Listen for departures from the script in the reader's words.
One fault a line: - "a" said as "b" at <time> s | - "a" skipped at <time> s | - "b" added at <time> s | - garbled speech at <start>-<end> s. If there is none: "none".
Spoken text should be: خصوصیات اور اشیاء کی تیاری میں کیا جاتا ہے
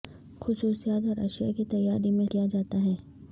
none